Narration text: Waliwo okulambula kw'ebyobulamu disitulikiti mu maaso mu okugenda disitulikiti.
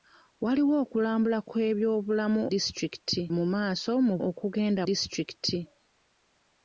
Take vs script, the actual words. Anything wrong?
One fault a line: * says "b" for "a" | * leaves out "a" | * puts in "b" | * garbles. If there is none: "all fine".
all fine